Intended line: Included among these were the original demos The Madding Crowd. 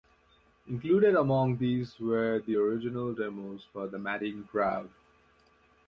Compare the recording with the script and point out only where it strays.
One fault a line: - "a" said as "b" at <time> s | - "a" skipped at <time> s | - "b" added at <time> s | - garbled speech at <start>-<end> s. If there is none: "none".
- "for" added at 3.6 s